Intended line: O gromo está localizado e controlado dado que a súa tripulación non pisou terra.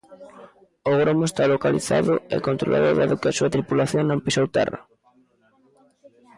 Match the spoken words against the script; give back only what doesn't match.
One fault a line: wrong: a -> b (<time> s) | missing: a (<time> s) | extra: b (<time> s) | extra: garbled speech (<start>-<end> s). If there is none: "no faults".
no faults